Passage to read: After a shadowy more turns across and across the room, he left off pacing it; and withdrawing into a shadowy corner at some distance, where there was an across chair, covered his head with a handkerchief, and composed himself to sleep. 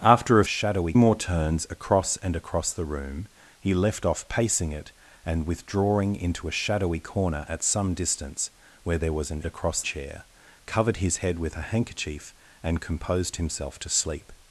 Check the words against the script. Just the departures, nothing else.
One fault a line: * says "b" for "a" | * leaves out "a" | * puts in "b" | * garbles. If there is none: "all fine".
all fine